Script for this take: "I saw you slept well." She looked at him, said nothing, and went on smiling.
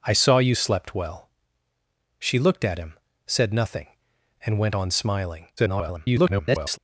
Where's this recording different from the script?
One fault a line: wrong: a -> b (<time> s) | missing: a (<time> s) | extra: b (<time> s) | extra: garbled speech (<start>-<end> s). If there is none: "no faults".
extra: garbled speech (5.6-6.8 s)